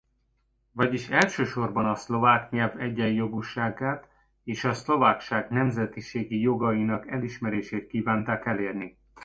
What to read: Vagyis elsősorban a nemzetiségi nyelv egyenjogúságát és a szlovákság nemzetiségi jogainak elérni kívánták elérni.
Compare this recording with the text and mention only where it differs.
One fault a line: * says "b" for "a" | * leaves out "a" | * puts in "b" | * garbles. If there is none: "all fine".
* says "szlovák" for "nemzetiségi"
* says "elismerését" for "elérni"